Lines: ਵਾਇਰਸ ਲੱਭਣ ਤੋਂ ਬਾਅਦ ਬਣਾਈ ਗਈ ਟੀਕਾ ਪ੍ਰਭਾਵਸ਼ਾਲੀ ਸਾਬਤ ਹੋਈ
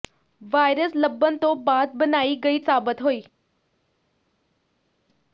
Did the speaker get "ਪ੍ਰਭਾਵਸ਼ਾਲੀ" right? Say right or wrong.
wrong